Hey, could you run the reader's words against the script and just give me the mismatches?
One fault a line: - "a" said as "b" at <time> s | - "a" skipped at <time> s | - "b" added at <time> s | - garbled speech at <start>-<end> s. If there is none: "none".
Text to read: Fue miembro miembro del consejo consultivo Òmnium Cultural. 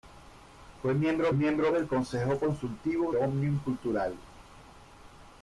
none